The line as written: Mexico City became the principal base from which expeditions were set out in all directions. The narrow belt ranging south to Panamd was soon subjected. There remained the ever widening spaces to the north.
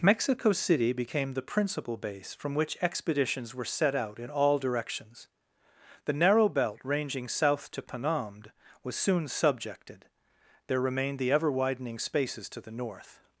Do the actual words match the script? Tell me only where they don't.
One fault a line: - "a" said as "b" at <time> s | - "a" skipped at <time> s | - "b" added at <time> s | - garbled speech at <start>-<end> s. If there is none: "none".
none